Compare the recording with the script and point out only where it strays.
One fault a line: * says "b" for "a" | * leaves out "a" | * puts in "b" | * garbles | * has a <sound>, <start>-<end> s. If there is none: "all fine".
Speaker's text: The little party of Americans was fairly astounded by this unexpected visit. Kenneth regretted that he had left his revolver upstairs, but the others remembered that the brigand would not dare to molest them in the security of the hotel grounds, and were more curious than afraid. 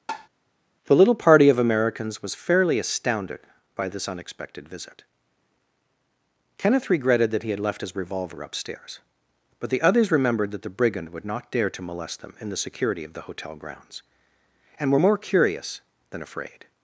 * has a tap, 0.1-0.3 s